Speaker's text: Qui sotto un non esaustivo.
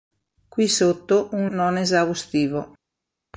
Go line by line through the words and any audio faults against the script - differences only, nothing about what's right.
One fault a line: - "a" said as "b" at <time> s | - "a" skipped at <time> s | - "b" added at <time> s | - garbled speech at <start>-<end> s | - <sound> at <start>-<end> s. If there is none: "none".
none